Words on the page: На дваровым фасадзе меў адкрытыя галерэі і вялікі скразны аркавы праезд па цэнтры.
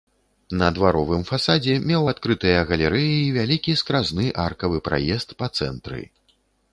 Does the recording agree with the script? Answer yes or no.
yes